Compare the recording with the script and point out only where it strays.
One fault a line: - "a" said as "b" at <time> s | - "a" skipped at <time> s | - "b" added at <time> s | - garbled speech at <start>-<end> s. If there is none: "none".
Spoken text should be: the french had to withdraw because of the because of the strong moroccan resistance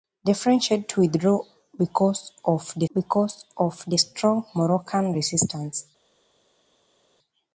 none